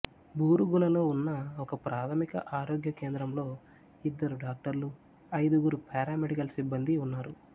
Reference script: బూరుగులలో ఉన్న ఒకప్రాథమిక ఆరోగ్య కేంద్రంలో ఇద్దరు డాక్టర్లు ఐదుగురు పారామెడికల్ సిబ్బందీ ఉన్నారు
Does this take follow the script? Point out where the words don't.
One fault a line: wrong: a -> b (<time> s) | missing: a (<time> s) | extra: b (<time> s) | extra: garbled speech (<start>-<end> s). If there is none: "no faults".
no faults